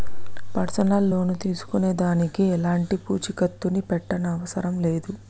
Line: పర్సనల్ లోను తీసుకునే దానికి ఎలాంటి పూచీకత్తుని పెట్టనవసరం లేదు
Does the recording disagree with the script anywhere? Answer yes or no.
no